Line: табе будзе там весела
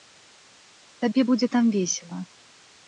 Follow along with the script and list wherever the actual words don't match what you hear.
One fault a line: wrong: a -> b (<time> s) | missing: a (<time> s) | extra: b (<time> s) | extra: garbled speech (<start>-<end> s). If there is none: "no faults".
no faults